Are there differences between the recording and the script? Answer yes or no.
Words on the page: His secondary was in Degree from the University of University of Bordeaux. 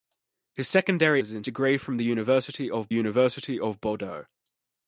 no